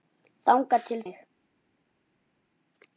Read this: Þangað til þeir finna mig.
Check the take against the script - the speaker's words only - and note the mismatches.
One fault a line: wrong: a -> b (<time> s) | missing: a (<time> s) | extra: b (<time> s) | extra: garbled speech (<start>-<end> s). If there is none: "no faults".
missing: þeir finna (1.0 s)